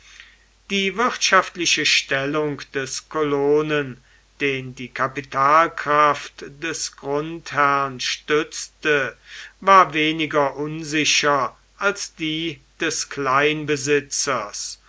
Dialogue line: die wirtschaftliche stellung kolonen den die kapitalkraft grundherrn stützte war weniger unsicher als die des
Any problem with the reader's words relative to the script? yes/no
yes